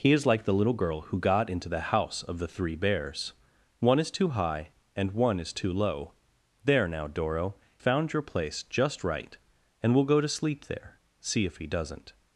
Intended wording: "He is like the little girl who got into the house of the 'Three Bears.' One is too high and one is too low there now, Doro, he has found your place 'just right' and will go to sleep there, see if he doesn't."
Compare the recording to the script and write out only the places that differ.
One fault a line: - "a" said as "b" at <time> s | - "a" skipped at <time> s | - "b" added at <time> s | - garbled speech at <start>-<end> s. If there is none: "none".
- "he has" skipped at 7.5 s